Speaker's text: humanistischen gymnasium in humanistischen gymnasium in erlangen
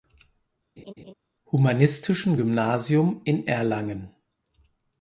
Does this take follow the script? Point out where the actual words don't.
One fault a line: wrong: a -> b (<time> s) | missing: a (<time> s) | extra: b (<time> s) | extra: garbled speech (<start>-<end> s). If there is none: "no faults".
missing: humanistischen gymnasium in (3.5 s)